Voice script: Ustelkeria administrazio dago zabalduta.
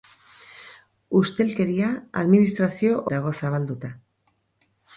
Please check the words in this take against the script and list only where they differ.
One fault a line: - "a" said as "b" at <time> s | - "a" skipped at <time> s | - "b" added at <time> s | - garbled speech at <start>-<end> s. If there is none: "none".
none